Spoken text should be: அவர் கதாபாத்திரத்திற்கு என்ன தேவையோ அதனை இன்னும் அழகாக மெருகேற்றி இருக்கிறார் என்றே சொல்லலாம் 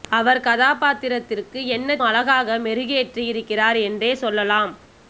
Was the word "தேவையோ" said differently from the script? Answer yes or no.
yes